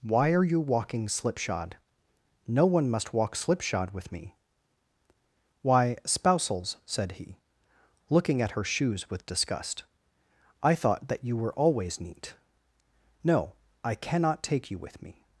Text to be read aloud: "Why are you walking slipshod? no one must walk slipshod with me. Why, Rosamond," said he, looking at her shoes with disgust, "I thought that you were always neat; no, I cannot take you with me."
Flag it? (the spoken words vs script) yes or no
yes